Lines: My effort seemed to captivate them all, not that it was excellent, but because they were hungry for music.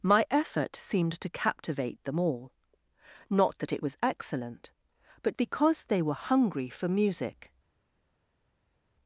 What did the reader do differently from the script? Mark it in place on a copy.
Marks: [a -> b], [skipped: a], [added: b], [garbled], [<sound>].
My effort seemed to captivate them all, not that it was excellent, but because they were hungry for music.